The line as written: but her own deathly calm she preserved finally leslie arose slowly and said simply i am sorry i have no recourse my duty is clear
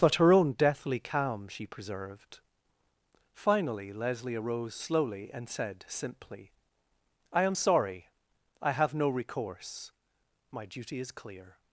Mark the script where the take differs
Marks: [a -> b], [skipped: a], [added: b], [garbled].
but her own deathly calm she preserved finally leslie arose slowly and said simply i am sorry i have no recourse my duty is clear